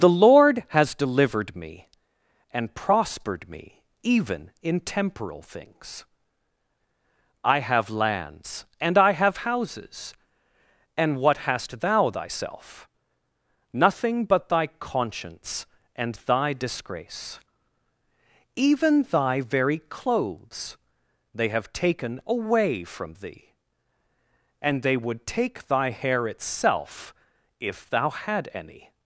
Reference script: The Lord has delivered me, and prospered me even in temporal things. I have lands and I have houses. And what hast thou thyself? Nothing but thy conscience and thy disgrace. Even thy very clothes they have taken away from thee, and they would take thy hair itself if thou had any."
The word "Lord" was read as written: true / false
true